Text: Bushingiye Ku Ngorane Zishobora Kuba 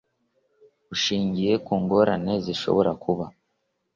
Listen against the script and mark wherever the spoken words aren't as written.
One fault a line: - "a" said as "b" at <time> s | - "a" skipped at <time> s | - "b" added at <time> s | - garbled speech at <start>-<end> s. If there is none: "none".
none